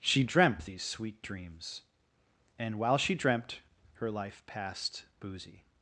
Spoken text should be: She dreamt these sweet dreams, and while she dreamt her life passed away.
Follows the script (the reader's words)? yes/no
no